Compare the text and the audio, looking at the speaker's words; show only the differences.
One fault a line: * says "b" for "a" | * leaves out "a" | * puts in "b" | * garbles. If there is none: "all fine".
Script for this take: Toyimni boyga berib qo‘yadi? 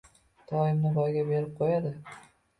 all fine